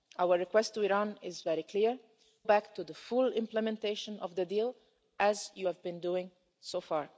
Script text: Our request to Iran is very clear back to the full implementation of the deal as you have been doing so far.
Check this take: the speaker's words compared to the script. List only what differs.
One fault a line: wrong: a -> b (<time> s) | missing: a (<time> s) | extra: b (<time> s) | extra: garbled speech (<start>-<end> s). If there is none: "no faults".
no faults